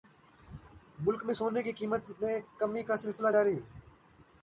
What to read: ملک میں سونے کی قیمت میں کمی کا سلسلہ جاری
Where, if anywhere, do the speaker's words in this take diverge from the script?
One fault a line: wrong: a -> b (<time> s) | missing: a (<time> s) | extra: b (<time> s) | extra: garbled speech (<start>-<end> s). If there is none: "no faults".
no faults